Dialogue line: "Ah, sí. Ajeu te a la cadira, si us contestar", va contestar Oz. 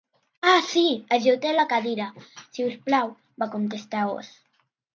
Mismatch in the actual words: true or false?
true